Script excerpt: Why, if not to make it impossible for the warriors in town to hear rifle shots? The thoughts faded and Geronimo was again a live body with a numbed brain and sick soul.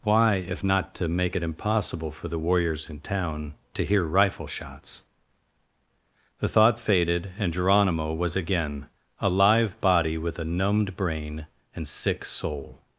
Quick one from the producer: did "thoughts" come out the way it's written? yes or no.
no